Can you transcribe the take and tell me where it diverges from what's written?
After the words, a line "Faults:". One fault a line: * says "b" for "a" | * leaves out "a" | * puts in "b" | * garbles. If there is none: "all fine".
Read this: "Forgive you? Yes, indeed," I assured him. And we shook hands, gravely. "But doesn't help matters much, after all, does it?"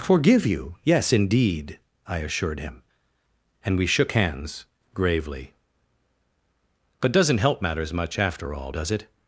"Forgive you? Yes, indeed," I assured him. And we shook hands, gravely. "But doesn't help matters much, after all, does it?"
Faults:
all fine